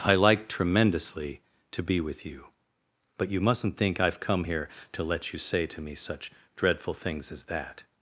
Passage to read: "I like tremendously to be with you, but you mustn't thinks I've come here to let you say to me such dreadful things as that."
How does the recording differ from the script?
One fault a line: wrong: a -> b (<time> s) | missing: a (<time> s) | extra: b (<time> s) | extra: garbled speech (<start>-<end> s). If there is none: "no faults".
wrong: thinks -> think (3.8 s)